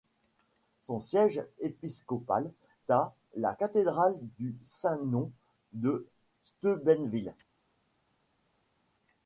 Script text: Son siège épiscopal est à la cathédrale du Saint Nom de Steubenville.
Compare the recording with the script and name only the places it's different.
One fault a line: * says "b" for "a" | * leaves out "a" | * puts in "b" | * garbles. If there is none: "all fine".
* leaves out "est"